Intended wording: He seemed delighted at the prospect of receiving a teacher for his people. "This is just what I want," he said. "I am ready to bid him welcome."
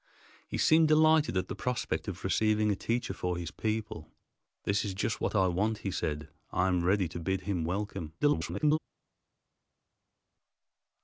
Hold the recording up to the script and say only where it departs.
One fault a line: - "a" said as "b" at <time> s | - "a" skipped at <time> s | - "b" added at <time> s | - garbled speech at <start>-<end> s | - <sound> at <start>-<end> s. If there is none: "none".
- garbled speech at 8.2-8.8 s